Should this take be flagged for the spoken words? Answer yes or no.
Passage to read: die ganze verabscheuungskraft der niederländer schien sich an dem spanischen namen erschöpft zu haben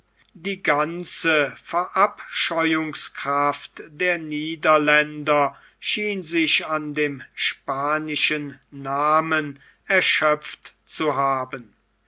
no